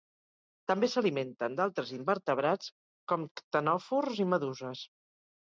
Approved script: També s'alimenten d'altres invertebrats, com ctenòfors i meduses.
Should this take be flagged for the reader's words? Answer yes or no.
no